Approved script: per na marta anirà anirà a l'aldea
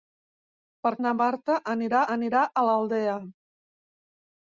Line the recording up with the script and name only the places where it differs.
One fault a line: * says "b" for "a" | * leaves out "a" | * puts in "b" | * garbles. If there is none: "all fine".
all fine